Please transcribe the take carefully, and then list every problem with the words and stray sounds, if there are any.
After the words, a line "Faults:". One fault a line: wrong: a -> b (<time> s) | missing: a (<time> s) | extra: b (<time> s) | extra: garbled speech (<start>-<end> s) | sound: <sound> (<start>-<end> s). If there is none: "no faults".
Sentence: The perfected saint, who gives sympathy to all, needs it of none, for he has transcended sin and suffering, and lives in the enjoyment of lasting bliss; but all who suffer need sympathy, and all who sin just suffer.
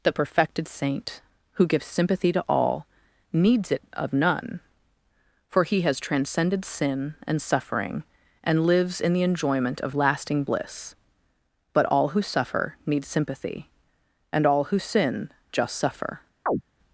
The perfected saint, who gives sympathy to all, needs it of none, for he has transcended sin and suffering, and lives in the enjoyment of lasting bliss; but all who suffer need sympathy, and all who sin just suffer.
Faults:
sound: chirp (16.5-16.6 s)